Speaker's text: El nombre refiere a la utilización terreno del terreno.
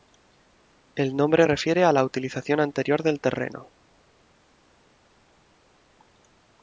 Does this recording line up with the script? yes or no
no